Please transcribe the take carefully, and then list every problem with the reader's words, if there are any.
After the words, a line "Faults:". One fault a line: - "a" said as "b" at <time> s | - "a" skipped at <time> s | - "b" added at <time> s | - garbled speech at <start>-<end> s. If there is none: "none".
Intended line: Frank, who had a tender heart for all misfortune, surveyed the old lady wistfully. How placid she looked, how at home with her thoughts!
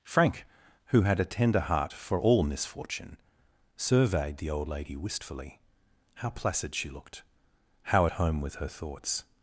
Frank, who had a tender heart for all misfortune, surveyed the old lady wistfully. How placid she looked, how at home with her thoughts!
Faults:
none